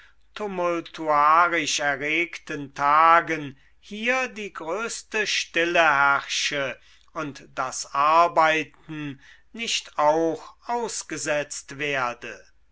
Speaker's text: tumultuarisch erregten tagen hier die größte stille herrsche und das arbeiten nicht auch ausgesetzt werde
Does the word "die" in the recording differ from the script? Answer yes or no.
no